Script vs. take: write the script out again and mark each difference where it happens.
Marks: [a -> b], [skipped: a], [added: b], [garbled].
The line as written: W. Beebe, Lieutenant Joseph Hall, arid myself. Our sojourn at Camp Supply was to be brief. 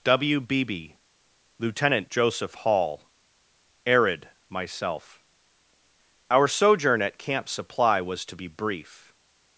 W. Beebe, Lieutenant Joseph Hall, arid myself. Our sojourn at Camp Supply was to be brief.